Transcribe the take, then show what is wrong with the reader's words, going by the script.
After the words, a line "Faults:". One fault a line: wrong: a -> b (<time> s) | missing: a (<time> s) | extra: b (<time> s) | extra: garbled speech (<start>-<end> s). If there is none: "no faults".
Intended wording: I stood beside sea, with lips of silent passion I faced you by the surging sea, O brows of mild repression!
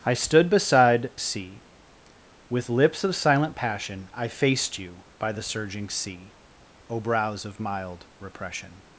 I stood beside sea, with lips of silent passion I faced you by the surging sea, O brows of mild repression!
Faults:
no faults